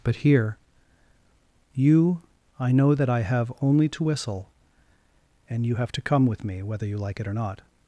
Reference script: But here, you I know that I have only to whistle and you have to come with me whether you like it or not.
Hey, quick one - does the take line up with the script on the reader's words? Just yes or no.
yes